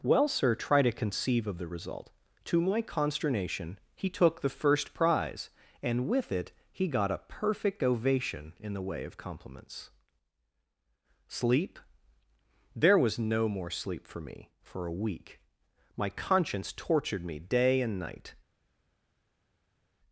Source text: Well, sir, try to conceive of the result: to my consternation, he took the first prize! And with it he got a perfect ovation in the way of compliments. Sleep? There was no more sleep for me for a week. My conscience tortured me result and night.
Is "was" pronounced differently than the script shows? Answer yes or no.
no